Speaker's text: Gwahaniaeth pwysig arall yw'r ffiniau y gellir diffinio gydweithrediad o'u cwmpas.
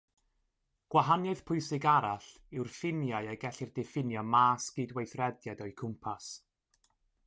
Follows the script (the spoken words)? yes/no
no